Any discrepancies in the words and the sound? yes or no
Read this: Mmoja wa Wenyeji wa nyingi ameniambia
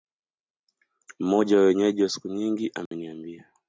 yes